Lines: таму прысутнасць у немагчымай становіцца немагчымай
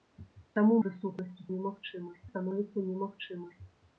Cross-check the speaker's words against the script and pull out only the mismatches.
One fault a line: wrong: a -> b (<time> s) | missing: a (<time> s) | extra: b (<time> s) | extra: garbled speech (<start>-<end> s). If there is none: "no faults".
no faults